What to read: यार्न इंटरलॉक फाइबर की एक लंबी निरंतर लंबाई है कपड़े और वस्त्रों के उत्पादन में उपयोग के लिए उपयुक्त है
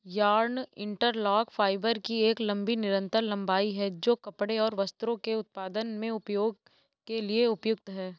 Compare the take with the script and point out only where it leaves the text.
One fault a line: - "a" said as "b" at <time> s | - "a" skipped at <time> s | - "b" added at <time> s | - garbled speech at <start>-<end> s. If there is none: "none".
- "जो" added at 3.9 s